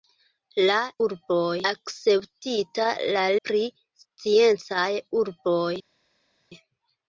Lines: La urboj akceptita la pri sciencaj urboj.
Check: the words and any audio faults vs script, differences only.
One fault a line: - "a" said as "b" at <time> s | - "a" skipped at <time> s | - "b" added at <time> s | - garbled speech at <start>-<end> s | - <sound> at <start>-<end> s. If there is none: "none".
none